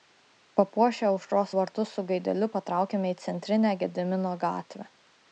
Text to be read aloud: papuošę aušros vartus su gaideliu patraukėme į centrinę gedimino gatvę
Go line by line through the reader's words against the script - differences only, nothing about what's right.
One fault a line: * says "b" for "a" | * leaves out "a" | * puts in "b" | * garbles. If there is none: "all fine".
all fine